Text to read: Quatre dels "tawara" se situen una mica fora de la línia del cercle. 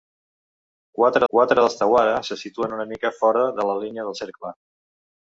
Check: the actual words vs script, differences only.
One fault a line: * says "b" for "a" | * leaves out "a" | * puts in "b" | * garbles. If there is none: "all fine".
* puts in "quatre"